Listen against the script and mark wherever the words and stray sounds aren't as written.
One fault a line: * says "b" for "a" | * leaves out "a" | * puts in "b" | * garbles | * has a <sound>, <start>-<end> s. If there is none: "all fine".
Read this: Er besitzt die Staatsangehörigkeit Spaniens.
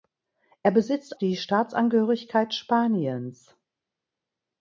all fine